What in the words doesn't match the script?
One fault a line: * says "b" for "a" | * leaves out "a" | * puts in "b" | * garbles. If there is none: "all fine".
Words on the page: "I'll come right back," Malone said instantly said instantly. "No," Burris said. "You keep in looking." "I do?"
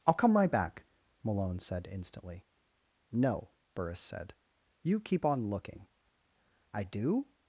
* leaves out "said instantly"
* says "on" for "in"